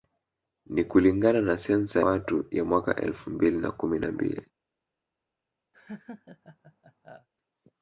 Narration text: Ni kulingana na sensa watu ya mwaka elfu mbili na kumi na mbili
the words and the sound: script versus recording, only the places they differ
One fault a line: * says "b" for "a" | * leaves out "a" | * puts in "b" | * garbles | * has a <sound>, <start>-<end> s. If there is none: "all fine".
* has a laugh, 5.7-7.3 s